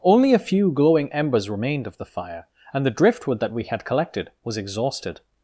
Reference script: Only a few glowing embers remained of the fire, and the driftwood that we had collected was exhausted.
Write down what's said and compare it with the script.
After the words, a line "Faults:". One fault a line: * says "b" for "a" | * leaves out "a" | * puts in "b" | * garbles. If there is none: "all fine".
Only a few glowing embers remained of the fire, and the driftwood that we had collected was exhausted.
Faults:
all fine